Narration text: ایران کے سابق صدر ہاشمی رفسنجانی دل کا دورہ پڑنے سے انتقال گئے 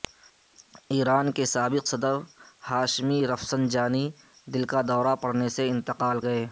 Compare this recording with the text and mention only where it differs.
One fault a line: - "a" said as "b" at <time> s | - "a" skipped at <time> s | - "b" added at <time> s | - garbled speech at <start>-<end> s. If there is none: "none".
none